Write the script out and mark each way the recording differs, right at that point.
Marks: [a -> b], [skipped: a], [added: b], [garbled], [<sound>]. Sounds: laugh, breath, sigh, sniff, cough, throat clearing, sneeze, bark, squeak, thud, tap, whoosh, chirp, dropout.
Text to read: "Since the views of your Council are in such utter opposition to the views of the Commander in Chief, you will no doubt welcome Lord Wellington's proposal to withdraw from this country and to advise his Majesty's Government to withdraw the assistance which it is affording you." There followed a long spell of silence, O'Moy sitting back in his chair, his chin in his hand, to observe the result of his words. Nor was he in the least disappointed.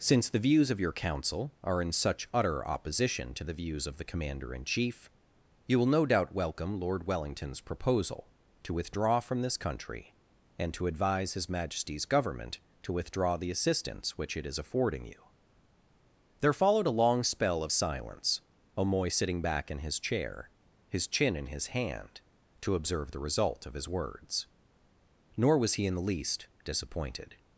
"Since the views of your Council are in such utter opposition to the views of the Commander in Chief, you will no doubt welcome Lord Wellington's proposal to withdraw from this country and to advise his Majesty's Government to withdraw the assistance which it is affording you." There followed a long spell of silence, O'Moy sitting back in his chair, his chin in his hand, to observe the result of his words. Nor was he in the least disappointed.